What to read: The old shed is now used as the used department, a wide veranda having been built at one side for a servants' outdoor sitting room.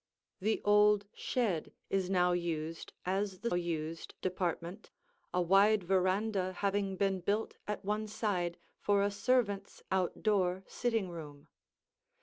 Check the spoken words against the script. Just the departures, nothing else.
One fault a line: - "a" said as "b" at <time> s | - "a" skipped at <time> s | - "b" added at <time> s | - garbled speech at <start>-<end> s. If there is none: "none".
none